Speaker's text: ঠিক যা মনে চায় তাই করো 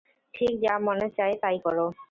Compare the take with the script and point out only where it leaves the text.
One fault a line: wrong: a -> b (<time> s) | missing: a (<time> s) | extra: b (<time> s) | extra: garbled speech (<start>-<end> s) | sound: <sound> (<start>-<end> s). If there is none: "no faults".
no faults